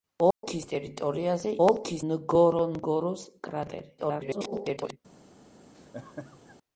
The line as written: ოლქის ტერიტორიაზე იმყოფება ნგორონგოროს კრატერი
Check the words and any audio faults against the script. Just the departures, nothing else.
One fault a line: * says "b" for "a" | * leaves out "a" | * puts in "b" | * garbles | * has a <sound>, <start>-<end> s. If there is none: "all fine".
* has a dropout, 0.3-0.4 s
* says "ოლქის" for "იმყოფება"
* garbles
* has a laugh, 5.7-6.6 s